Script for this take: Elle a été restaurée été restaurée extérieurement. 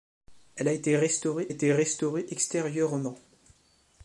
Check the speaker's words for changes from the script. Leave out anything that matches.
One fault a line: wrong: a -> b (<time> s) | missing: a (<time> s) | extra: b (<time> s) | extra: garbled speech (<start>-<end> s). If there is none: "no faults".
no faults